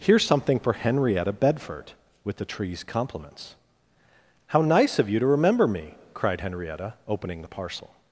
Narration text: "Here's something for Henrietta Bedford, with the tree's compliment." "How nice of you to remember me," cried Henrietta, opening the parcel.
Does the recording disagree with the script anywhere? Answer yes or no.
yes